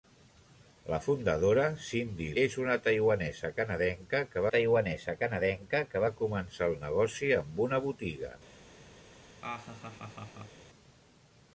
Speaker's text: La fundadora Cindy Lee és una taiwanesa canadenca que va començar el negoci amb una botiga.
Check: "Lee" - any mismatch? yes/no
yes